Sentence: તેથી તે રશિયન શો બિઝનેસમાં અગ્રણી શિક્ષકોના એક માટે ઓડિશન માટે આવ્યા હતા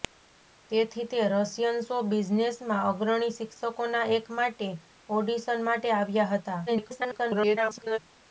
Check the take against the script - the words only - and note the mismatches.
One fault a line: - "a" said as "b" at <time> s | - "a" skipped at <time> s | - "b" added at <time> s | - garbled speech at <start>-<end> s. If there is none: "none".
- garbled speech at 6.7-8.0 s